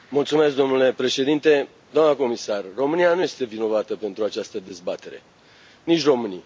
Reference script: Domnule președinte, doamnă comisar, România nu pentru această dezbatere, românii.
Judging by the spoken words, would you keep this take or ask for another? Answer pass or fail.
fail